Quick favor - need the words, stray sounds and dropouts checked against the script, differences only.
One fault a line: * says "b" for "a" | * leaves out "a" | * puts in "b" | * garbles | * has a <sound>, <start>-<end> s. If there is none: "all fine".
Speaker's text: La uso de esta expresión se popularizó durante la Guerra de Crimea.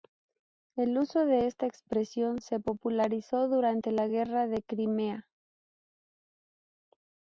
* says "El" for "La"